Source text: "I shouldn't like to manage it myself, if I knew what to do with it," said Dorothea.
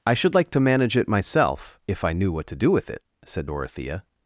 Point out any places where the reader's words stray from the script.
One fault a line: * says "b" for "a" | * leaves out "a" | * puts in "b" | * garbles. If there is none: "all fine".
* says "should" for "shouldn't"